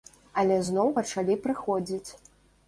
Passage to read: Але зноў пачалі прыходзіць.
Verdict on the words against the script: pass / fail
pass